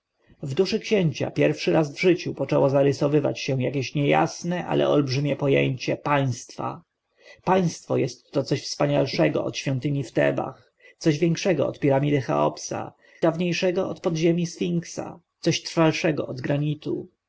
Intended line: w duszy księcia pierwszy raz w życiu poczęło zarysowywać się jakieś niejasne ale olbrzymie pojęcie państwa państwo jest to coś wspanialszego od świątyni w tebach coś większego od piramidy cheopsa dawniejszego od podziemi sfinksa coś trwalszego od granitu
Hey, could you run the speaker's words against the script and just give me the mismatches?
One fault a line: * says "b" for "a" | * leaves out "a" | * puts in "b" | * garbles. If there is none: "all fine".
all fine